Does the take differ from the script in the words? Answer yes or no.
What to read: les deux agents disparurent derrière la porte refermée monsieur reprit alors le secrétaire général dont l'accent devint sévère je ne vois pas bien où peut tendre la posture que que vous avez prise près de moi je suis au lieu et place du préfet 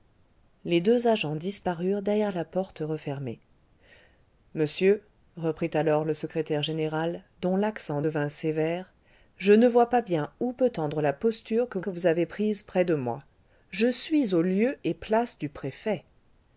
no